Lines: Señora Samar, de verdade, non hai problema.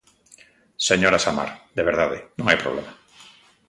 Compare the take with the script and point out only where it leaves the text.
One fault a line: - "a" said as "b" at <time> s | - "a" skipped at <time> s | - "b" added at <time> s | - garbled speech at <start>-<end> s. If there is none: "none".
none